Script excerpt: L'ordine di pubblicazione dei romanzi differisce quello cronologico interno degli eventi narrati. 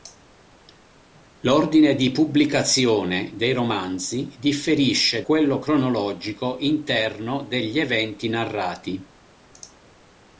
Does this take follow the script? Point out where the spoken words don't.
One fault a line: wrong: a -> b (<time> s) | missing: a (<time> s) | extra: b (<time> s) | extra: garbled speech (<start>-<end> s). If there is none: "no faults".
no faults